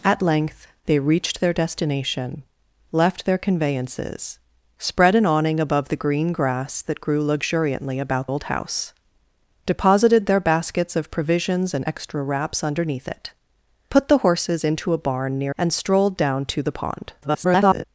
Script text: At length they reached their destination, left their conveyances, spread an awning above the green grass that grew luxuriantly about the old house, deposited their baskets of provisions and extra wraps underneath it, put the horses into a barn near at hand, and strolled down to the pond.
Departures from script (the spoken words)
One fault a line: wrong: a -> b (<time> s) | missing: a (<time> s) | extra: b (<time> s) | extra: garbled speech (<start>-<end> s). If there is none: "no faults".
missing: the (8.3 s)
missing: at hand (15.5 s)
extra: garbled speech (17.2-17.8 s)